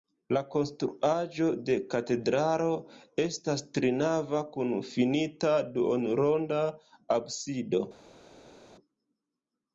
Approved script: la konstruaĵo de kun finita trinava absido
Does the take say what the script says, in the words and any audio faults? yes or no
no